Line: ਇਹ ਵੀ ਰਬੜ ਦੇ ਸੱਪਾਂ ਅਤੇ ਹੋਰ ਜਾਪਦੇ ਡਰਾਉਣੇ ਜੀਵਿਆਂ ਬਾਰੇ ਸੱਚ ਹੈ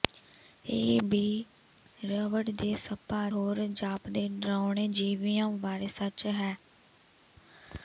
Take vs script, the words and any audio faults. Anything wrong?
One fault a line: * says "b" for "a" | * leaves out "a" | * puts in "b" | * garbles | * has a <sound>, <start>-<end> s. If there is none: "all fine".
* leaves out "ਅਤੇ"